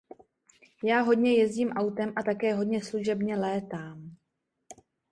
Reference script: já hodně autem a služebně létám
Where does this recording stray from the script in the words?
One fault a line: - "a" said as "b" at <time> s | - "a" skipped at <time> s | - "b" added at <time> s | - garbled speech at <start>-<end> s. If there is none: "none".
- "jezdím" added at 1.3 s
- "také hodně" added at 2.2 s